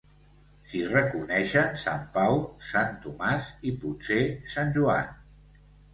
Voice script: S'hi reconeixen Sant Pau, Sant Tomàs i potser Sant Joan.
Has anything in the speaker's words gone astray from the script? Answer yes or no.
no